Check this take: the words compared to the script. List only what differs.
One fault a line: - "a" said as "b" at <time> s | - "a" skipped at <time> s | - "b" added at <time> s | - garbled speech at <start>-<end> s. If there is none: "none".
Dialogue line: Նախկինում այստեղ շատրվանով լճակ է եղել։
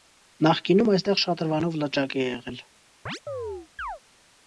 none